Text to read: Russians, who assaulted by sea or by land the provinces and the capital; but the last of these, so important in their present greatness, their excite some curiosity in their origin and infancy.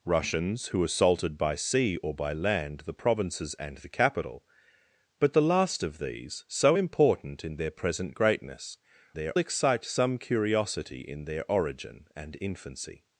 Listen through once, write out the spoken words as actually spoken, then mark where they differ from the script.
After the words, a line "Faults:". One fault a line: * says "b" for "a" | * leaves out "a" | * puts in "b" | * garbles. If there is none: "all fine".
Russians, who assaulted by sea or by land the provinces and the capital; but the last of these, so important in their present greatness, their excite some curiosity in their origin and infancy.
Faults:
all fine